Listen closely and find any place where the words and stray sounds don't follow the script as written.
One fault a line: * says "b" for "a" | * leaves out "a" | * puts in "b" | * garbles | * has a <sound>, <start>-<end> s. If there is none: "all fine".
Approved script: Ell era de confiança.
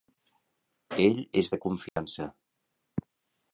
* says "és" for "era"
* has a dropout, 1.9-2.0 s